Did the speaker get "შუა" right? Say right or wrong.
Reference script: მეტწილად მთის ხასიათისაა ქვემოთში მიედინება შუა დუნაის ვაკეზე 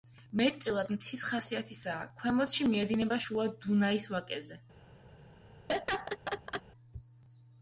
right